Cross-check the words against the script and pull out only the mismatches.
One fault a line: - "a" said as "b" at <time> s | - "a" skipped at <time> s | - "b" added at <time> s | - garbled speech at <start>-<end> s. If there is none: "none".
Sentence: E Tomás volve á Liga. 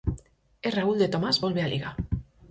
- "Raúl de" added at 0.8 s